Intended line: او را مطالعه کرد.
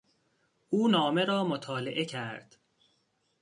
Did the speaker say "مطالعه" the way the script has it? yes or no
yes